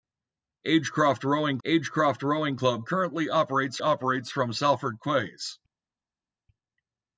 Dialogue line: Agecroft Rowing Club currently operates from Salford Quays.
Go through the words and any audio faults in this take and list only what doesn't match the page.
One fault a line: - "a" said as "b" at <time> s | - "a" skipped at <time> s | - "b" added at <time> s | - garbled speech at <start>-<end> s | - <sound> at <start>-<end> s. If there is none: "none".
- "agecroft Rowing" added at 1.6 s
- "operates" added at 3.8 s